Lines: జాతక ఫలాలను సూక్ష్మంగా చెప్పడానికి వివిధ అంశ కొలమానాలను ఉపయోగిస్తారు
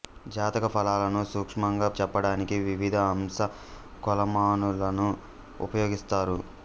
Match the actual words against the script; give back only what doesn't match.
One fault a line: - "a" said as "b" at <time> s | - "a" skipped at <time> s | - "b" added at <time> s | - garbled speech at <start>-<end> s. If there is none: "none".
none